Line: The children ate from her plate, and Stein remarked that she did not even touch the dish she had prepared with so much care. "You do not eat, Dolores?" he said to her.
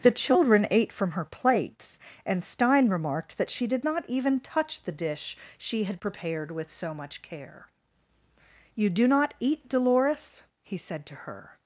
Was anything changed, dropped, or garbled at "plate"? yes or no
yes